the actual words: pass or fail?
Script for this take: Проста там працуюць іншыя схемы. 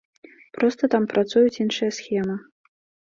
pass